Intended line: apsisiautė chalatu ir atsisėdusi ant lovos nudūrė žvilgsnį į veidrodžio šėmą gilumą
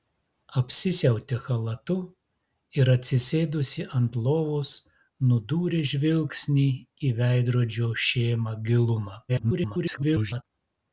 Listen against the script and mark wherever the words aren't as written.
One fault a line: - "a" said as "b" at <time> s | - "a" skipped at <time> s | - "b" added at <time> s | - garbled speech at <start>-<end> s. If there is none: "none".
- garbled speech at 9.3-10.4 s